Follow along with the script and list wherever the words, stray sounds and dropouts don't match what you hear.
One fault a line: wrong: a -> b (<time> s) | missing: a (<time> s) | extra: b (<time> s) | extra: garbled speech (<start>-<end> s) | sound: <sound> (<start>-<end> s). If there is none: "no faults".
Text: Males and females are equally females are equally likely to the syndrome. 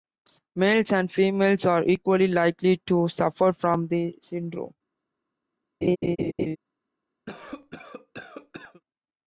wrong: females are equally likely to -> likely to suffer from (2.3 s)
sound: laugh (5.8-6.6 s)
sound: cough (7.3-8.8 s)